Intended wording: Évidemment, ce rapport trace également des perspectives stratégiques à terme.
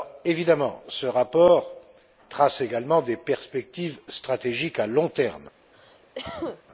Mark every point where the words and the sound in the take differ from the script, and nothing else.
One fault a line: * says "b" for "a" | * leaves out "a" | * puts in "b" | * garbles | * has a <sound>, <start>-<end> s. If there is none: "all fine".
* puts in "long"
* has a cough, 5.7-6.6 s